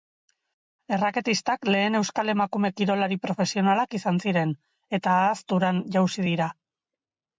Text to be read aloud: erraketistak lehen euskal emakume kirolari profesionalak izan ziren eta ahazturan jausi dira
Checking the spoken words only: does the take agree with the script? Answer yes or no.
yes